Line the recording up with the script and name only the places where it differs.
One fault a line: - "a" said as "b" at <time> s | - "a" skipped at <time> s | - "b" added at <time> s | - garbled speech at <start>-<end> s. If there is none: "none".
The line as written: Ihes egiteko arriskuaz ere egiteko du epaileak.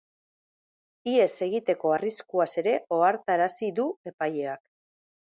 - "egiteko" said as "ohartarazi" at 3.0 s